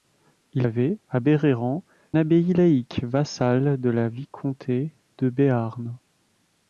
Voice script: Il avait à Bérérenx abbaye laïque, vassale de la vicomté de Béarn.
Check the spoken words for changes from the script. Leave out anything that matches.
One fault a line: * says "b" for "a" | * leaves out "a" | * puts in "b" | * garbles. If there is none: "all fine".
all fine